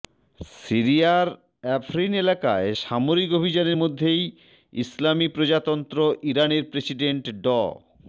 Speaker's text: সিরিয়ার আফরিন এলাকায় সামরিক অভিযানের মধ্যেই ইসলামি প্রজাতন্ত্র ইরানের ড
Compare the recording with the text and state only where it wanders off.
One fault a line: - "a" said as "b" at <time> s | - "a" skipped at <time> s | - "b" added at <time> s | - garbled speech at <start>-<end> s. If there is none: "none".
- "প্রেসিডেন্ট" added at 6.6 s